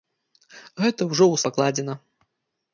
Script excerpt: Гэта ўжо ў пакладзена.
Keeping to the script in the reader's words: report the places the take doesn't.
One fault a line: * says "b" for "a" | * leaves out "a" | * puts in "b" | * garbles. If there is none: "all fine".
all fine